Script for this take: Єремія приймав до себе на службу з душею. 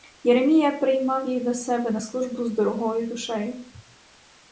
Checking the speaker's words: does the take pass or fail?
fail